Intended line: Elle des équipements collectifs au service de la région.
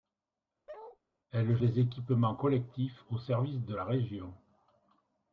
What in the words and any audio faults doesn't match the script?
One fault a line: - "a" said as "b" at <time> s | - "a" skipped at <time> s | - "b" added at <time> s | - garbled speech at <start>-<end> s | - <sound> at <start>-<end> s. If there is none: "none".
- bark at 0.7-1.0 s